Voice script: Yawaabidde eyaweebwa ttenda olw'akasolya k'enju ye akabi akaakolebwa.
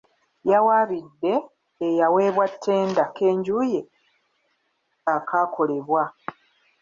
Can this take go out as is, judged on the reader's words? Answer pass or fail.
fail